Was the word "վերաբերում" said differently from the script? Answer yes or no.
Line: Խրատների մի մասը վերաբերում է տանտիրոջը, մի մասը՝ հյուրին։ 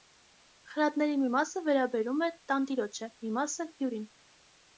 no